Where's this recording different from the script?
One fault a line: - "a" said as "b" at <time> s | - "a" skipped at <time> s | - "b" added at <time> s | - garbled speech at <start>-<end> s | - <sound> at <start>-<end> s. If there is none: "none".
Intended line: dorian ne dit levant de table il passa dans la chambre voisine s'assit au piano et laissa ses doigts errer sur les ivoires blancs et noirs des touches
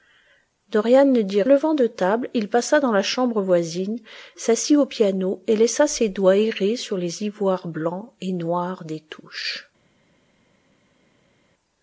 none